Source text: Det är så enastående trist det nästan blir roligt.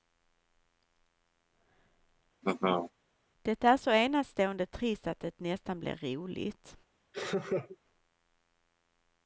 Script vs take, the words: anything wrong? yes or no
yes